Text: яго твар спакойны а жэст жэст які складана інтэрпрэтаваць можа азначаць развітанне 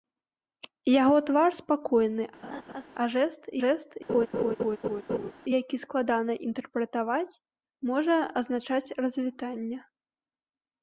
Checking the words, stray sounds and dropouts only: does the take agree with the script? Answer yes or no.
no